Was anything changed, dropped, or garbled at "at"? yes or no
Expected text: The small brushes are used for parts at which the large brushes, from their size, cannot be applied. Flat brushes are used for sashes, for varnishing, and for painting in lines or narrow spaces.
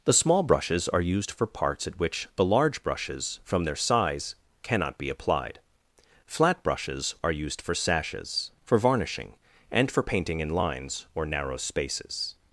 no